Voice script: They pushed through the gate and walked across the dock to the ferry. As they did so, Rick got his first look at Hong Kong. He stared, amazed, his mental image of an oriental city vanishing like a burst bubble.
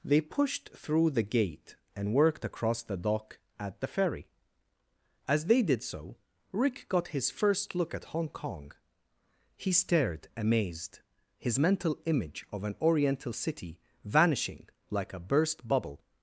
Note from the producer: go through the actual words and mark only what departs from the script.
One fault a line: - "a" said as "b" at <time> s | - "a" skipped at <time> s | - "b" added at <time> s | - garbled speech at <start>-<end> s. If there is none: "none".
- "walked" said as "worked" at 2.1 s
- "to" said as "at" at 3.6 s